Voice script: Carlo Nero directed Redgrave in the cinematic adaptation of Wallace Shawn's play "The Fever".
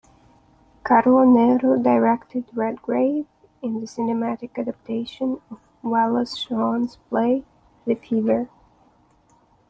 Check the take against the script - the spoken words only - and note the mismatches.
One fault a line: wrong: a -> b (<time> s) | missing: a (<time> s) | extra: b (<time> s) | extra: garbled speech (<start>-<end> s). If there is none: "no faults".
no faults